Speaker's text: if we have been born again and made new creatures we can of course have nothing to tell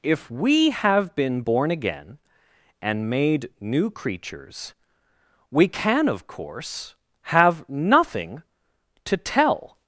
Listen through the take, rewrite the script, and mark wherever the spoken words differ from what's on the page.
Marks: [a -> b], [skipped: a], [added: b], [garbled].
if we have been born again and made new creatures we can of course have nothing to tell